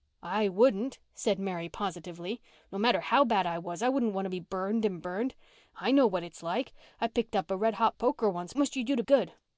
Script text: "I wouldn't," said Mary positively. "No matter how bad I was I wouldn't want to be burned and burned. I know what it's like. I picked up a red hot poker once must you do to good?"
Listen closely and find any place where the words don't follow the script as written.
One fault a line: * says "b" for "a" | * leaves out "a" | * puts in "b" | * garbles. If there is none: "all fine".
all fine